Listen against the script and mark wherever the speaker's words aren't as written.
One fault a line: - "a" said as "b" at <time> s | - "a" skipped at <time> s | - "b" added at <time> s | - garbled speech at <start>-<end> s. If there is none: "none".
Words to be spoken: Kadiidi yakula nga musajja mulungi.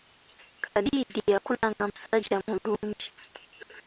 none